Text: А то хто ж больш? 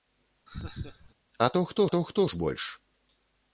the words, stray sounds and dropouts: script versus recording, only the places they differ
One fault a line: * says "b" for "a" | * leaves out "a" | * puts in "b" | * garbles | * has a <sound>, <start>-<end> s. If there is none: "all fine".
* has a laugh, 0.5-1.1 s
* puts in "то хто"